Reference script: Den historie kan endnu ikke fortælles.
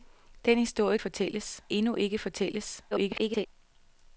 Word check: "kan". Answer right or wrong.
wrong